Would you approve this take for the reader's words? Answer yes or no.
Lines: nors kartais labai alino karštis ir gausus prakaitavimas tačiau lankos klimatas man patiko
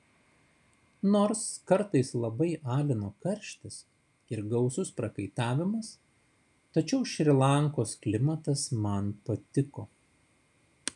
no